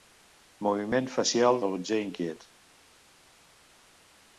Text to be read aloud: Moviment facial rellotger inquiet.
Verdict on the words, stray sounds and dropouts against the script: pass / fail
pass